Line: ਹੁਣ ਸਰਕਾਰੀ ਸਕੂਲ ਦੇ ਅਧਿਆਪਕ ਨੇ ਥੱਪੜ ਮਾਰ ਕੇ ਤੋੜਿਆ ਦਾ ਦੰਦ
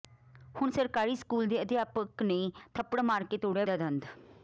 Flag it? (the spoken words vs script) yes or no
no